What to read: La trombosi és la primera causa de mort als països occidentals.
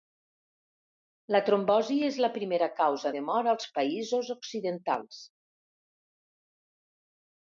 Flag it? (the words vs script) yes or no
no